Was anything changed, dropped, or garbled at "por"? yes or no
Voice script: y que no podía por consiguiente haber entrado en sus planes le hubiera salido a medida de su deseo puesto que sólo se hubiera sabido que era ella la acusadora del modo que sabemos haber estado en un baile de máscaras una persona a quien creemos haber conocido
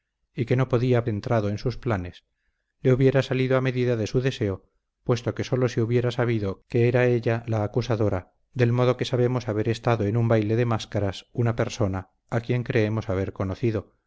yes